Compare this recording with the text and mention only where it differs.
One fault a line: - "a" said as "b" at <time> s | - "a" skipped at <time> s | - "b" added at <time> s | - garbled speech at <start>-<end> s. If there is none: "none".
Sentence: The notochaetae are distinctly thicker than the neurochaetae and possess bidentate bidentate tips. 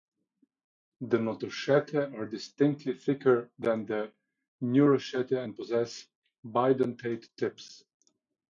- "bidentate" skipped at 7.3 s